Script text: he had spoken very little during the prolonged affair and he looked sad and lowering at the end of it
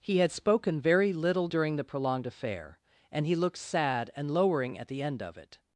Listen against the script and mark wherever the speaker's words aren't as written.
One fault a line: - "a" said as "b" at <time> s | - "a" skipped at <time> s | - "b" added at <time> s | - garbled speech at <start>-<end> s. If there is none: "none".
none